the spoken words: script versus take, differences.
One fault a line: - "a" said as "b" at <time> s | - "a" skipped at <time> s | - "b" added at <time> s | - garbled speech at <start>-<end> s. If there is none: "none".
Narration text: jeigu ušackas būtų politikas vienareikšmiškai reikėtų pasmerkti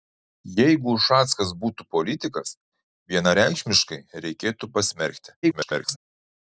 - garbled speech at 5.4-6.0 s